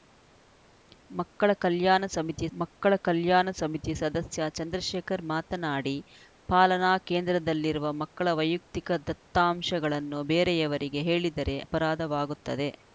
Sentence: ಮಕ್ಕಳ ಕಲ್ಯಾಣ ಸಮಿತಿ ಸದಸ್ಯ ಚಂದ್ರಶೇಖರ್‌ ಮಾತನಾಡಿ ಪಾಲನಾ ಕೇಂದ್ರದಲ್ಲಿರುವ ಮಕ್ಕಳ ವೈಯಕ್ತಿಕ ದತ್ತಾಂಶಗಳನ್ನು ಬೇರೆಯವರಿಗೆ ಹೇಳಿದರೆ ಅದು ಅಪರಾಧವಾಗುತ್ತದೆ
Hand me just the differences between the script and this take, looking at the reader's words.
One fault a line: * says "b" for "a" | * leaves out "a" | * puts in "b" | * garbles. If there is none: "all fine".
* puts in "ಮಕ್ಕಳ ಕಲ್ಯಾಣ ಸಮಿತಿ"
* leaves out "ಅದು"